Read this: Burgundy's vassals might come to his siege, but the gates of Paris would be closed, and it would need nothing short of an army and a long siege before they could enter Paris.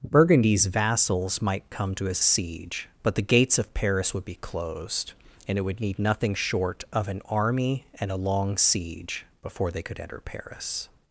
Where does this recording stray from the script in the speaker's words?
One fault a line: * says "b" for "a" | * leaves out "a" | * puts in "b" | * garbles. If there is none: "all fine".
all fine